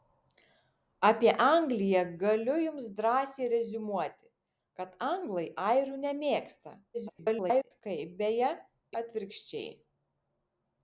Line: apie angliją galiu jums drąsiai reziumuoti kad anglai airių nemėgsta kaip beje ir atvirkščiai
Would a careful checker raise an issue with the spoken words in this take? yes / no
yes